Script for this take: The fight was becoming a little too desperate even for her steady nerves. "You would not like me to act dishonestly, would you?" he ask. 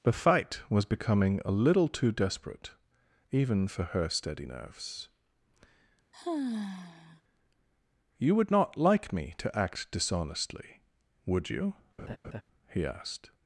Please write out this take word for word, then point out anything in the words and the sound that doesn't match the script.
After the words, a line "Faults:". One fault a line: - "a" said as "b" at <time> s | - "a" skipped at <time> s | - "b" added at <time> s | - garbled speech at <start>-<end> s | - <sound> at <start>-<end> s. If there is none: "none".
The fight was becoming a little too desperate even for her steady nerves. "You would not like me to act dishonestly, would you?" he asked.
Faults:
- sigh at 6.1-7.2 s
- laugh at 12.0-12.4 s
- "ask" said as "asked" at 12.8 s